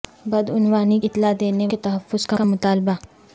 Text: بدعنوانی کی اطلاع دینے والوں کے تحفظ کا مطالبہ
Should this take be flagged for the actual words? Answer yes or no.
yes